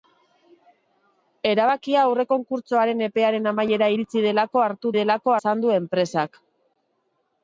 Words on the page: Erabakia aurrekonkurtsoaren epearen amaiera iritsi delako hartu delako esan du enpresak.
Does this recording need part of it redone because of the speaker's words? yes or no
no